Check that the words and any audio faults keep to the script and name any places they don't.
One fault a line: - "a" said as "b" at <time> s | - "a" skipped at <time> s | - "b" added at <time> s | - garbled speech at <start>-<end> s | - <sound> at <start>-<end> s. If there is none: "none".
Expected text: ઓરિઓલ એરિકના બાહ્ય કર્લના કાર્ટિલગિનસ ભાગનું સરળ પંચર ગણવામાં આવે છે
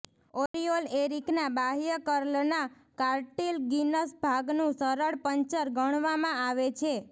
- dropout at 0.5-0.5 s